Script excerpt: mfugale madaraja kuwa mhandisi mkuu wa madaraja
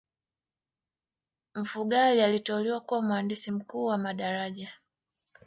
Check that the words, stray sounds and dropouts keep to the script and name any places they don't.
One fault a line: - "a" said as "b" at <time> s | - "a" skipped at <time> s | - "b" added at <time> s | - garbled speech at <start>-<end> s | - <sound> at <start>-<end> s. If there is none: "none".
- "madaraja" said as "aliteuliwa" at 2.2 s